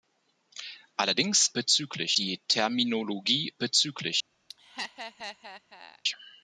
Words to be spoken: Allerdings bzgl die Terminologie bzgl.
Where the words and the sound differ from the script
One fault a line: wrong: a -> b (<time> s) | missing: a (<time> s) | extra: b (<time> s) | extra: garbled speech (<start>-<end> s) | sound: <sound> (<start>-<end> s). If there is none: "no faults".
sound: laugh (4.5-6.0 s)